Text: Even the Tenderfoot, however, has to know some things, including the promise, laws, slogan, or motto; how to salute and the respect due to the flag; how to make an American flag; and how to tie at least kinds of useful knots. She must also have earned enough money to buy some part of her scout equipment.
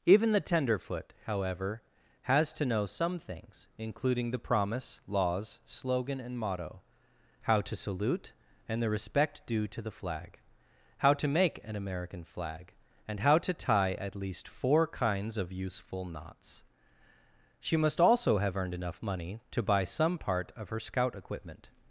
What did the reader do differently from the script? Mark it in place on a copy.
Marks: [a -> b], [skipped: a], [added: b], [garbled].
Even the Tenderfoot, however, has to know some things, including the promise, laws, slogan, [or -> and] motto; how to salute and the respect due to the flag; how to make an American flag; and how to tie at least [added: four] kinds of useful knots. She must also have earned enough money to buy some part of her scout equipment.